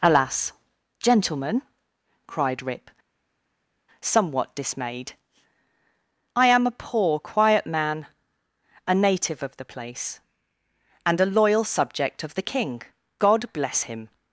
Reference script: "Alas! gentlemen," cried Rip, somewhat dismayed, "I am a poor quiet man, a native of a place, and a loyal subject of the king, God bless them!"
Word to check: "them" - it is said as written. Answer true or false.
false